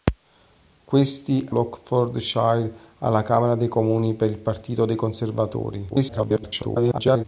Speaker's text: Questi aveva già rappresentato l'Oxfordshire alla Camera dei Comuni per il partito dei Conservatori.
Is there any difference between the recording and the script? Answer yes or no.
yes